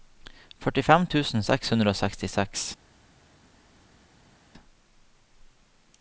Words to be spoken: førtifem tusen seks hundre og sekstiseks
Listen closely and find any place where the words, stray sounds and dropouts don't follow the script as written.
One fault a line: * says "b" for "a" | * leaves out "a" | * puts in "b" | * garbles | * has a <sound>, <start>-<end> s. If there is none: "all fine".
all fine